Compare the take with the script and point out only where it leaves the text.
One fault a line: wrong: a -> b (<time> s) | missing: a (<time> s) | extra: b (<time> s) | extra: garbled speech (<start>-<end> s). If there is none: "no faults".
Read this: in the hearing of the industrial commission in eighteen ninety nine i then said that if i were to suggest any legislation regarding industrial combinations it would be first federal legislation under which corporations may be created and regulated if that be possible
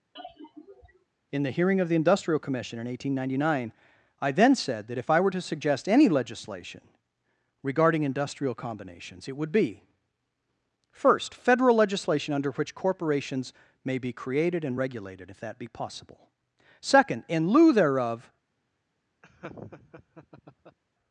extra: second in lieu thereof (16.8 s)